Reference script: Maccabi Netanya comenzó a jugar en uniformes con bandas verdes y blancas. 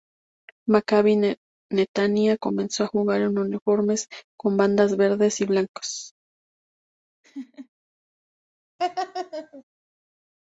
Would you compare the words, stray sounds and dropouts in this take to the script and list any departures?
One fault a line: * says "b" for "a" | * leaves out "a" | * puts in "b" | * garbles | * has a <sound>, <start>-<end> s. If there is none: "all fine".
* has a laugh, 7.2-7.7 s
* has a laugh, 8.8-9.6 s